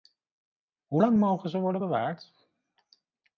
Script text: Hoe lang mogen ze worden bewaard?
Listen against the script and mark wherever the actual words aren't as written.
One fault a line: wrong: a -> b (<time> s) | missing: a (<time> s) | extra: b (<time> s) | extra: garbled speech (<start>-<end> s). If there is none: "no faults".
no faults